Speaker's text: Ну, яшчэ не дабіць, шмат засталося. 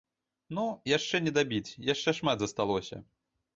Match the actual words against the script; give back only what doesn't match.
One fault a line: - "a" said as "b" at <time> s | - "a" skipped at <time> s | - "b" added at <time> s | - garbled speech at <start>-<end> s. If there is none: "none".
- "яшчэ" added at 1.9 s